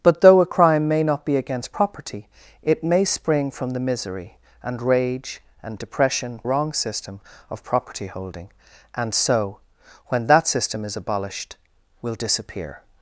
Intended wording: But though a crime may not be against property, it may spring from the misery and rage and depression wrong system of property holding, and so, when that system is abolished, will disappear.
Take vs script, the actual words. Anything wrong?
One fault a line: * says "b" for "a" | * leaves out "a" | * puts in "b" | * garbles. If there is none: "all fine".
all fine